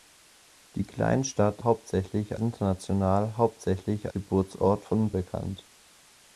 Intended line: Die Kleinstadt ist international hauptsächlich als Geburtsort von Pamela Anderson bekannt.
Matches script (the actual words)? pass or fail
fail